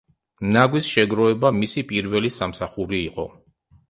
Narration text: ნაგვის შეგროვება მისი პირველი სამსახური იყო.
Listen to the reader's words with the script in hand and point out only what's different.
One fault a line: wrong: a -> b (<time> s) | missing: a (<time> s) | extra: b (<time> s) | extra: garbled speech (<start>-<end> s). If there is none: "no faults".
no faults